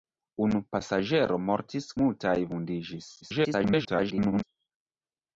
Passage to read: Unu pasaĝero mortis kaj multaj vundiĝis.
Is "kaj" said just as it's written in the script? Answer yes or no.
no